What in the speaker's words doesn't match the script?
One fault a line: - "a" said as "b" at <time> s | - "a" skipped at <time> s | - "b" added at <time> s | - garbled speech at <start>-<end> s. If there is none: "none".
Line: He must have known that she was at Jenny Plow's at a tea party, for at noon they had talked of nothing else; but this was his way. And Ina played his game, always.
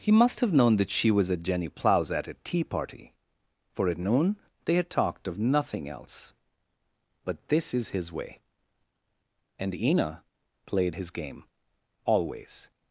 - "was" said as "is" at 7.7 s